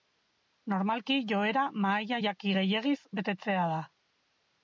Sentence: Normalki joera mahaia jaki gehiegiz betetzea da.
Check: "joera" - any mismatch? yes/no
no